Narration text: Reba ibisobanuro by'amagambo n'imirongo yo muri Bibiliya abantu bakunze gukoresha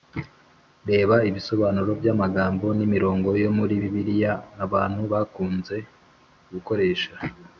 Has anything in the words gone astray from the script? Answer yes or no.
no